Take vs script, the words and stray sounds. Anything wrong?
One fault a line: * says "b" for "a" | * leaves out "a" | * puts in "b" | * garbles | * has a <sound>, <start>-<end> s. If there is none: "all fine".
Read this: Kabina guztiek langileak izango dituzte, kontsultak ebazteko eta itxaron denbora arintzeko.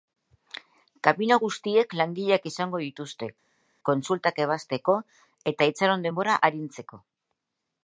all fine